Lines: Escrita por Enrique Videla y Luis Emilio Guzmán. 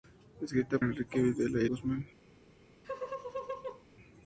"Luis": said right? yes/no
no